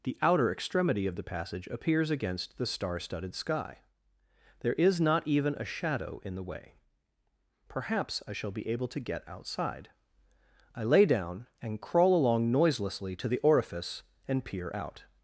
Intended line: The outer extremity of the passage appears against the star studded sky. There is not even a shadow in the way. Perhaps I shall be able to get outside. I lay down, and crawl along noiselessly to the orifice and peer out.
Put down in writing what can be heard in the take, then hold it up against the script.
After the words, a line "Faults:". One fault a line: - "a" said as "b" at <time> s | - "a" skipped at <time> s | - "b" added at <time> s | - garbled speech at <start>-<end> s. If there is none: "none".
The outer extremity of the passage appears against the star studded sky. There is not even a shadow in the way. Perhaps I shall be able to get outside. I lay down, and crawl along noiselessly to the orifice and peer out.
Faults:
none